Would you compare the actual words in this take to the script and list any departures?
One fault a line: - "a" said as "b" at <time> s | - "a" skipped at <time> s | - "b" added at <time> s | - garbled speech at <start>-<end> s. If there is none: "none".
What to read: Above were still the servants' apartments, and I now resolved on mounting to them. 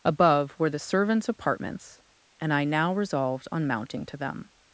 - "still" skipped at 0.7 s